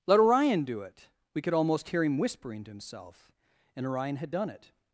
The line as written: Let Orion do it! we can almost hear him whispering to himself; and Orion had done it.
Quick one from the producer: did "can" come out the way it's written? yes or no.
no